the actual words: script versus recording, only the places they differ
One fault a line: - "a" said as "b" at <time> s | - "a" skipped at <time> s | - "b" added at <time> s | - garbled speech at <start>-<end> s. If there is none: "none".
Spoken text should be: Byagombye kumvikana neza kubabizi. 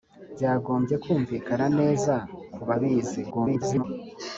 - garbled speech at 3.3-3.8 s